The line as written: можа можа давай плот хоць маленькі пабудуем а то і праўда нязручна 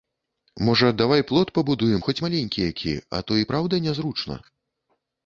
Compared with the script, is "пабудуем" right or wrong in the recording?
wrong